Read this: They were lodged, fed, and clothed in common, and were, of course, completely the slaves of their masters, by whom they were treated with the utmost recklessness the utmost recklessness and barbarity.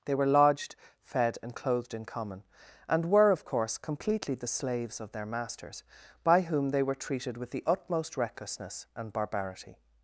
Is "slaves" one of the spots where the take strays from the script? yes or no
no